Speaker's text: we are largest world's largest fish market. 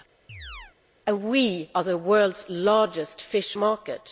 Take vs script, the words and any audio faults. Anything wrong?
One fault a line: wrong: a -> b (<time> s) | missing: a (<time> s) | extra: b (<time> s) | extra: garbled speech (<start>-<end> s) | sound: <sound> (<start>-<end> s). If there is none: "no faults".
sound: chirp (0.3-0.8 s)
wrong: largest -> the (1.8 s)